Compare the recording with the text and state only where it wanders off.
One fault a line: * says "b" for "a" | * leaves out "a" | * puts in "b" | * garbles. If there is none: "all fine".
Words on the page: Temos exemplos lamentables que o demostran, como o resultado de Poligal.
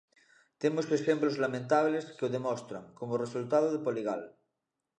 all fine